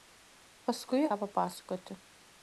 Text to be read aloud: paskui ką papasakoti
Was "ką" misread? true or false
false